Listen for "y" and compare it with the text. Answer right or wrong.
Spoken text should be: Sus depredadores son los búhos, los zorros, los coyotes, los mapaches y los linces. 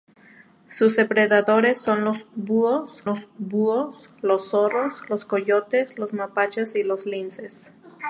right